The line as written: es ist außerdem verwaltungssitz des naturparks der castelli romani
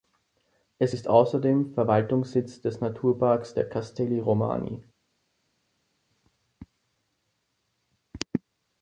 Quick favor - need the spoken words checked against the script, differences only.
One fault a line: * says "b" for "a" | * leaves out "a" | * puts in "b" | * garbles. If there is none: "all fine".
all fine